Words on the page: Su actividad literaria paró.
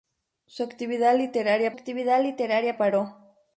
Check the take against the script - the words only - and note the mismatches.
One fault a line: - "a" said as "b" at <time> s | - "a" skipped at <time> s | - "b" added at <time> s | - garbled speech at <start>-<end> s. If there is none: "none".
- "actividad literaria" added at 1.7 s